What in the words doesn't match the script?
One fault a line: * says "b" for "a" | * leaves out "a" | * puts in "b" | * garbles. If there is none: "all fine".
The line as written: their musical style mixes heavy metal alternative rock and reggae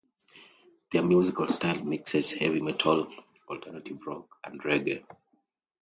all fine